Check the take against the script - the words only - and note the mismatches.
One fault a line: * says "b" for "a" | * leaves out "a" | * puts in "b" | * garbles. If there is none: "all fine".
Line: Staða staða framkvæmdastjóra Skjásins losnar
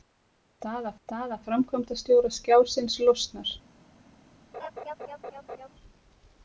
all fine